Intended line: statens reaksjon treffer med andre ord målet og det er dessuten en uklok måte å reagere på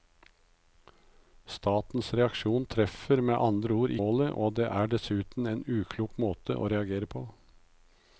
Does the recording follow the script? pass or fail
pass